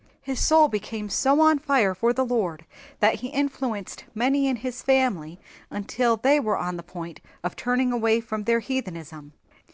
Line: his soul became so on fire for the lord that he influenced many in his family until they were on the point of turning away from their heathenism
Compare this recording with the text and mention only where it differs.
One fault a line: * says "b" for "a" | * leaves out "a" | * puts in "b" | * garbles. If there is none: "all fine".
all fine